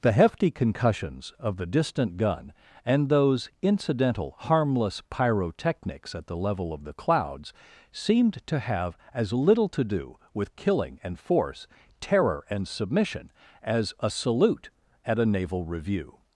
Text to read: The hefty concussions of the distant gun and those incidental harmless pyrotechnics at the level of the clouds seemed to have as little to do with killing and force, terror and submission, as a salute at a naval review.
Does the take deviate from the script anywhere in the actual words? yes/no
no